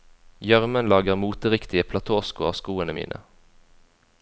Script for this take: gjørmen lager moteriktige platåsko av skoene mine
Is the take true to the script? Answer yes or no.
yes